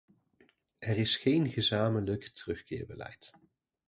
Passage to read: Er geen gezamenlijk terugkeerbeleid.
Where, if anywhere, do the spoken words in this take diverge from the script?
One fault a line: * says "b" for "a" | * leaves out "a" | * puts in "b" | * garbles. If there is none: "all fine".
* puts in "is"